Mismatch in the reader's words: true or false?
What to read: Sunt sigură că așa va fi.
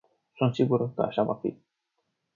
false